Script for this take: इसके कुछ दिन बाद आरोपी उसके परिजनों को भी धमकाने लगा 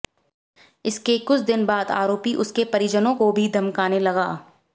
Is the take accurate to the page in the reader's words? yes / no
yes